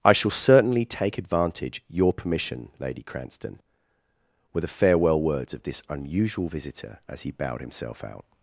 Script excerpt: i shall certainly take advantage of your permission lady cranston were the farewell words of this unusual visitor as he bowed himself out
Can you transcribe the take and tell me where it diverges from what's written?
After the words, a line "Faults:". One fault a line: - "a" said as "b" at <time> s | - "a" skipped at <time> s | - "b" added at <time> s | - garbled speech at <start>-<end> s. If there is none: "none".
i shall certainly take advantage your permission lady cranston were the farewell words of this unusual visitor as he bowed himself out
Faults:
- "of" skipped at 1.8 s